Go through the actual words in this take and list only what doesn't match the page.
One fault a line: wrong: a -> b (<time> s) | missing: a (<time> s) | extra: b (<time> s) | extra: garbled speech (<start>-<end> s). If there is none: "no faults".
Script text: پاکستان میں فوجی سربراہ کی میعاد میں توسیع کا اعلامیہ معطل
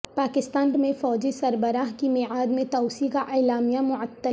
no faults